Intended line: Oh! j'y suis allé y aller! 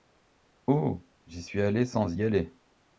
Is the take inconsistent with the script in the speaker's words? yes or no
yes